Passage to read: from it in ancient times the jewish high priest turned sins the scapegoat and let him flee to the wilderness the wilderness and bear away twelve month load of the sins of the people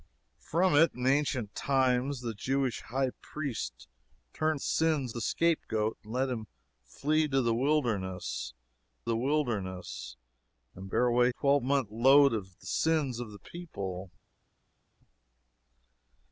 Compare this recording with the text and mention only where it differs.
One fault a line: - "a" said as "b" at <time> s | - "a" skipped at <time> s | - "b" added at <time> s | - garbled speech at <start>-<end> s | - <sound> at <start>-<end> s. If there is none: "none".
none